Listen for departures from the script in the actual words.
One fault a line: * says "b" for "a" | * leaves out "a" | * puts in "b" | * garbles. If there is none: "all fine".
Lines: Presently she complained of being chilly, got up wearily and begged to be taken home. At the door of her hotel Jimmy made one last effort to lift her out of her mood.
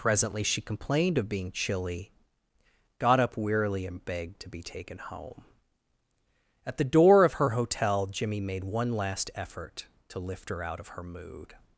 all fine